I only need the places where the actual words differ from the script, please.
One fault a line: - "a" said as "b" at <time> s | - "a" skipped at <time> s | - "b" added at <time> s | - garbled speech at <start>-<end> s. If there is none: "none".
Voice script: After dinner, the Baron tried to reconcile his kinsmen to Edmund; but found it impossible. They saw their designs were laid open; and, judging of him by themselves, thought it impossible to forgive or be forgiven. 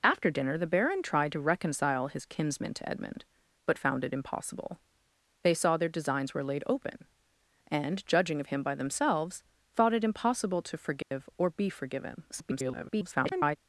- garbled speech at 12.3-13.6 s